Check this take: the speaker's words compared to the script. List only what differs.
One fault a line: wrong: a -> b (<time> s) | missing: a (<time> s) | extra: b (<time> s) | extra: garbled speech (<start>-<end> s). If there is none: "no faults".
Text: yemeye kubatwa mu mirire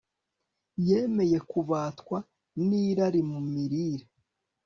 extra: nirari (2.7 s)